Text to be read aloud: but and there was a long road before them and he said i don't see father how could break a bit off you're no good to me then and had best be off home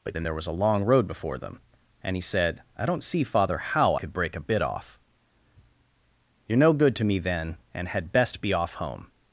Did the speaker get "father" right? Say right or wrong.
right